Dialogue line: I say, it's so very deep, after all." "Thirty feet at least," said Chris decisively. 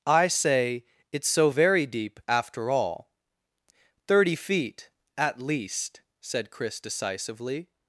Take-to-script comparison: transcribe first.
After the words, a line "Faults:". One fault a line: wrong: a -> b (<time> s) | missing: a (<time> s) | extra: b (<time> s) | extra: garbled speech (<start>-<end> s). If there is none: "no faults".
I say, it's so very deep, after all." "Thirty feet at least," said Chris decisively.
Faults:
no faults